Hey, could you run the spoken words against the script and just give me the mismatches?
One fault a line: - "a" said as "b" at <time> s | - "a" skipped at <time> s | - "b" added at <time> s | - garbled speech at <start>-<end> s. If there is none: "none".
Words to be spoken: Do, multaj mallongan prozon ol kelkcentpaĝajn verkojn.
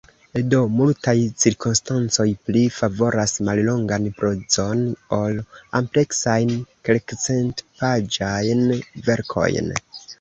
- "cirkonstancoj pli favoras" added at 1.4 s
- "ampleksajn" added at 5.8 s